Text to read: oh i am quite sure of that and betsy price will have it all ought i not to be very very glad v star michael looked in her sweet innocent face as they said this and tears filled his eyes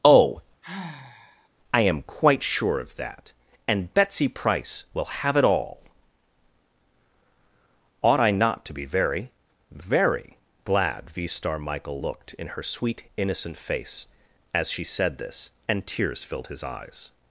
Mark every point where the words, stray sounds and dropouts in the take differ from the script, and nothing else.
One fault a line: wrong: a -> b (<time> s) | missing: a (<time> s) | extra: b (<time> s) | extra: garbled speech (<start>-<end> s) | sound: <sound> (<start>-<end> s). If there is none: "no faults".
sound: sigh (0.6-1.5 s)
wrong: they -> she (14.7 s)